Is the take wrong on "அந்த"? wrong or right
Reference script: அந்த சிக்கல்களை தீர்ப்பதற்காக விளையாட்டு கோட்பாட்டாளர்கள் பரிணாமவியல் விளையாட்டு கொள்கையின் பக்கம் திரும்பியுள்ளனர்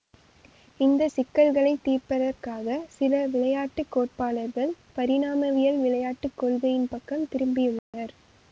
wrong